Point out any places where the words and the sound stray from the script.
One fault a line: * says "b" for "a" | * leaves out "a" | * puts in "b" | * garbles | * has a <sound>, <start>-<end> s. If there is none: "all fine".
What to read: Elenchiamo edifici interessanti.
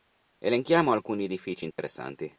* puts in "alcuni"
* has a dropout, 1.7-1.8 s